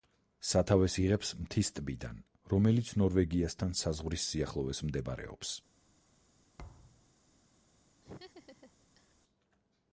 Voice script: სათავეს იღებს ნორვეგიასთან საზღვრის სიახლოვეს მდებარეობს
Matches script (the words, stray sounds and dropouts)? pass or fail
fail